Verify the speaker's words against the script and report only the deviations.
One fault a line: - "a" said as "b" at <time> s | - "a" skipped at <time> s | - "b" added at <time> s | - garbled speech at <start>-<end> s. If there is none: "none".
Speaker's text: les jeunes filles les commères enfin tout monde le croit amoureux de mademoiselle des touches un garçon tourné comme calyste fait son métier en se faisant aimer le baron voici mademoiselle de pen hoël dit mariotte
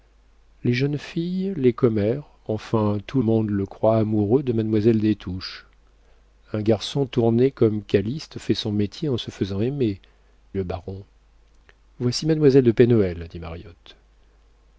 none